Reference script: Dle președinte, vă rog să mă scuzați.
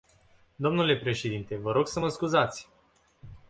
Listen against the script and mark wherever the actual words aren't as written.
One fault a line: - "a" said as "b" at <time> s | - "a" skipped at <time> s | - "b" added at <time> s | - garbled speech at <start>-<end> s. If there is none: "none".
none